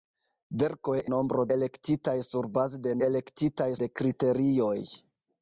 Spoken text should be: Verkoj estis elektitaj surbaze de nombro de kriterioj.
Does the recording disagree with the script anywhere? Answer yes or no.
yes